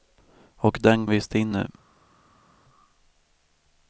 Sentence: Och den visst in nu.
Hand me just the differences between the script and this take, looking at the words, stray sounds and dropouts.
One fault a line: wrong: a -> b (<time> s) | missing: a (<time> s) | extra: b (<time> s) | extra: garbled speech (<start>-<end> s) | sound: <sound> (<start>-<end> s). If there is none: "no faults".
no faults